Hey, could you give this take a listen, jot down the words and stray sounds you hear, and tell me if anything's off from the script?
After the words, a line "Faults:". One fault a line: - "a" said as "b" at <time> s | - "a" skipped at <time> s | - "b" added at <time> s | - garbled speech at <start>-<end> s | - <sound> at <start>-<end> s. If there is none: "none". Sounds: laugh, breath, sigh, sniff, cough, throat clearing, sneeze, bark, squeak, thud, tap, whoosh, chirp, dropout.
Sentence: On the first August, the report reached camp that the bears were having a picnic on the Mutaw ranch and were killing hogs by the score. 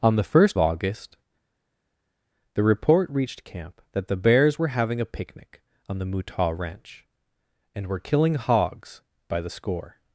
On the first August, the report reached camp that the bears were having a picnic on the Mutaw ranch and were killing hogs by the score.
Faults:
none